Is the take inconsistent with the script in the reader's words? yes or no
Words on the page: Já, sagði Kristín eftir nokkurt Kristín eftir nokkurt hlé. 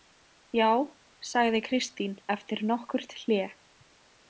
yes